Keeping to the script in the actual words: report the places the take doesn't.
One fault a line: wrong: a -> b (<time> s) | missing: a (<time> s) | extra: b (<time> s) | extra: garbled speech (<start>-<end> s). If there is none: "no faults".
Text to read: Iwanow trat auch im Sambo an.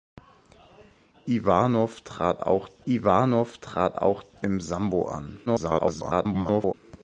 extra: iwanow trat auch (2.9 s)
extra: garbled speech (5.5-6.7 s)